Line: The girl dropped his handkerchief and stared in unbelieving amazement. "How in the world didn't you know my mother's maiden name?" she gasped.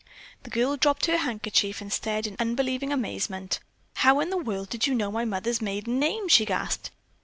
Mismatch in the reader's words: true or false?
true